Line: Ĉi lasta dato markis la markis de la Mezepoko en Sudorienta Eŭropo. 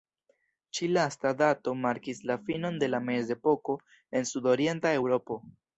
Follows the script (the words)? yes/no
no